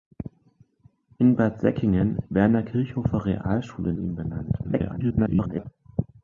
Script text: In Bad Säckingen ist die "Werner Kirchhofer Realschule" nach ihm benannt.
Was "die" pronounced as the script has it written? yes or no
no